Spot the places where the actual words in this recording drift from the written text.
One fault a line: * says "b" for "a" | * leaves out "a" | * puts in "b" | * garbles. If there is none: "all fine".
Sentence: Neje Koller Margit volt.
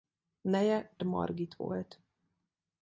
* leaves out "Koller"